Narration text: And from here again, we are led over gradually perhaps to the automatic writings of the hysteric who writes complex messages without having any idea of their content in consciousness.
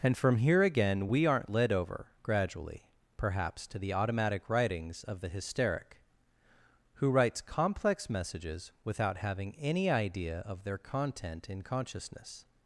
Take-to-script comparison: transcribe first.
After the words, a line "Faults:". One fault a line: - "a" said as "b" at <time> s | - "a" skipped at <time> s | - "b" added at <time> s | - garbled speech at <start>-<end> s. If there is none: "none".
And from here again, we aren't led over gradually perhaps to the automatic writings of the hysteric who writes complex messages without having any idea of their content in consciousness.
Faults:
- "are" said as "aren't" at 1.3 s